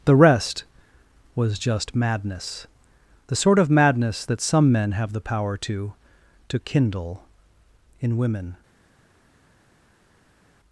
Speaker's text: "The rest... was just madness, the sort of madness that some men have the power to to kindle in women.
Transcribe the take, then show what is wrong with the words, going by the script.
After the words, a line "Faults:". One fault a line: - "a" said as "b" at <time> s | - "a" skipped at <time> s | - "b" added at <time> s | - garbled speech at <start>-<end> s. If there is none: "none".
"The rest... was just madness, the sort of madness that some men have the power to to kindle in women.
Faults:
none